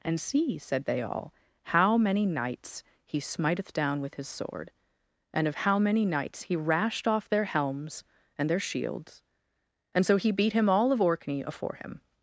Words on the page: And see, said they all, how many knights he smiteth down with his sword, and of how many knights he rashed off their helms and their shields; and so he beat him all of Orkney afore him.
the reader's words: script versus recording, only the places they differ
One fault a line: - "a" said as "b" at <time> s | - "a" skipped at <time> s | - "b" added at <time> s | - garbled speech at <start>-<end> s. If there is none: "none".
none